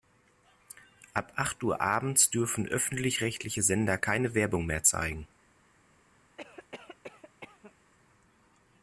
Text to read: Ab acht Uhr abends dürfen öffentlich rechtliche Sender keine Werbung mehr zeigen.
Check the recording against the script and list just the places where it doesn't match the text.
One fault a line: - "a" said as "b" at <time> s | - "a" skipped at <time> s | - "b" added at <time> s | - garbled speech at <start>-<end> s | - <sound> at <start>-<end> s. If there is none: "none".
- cough at 6.4-7.7 s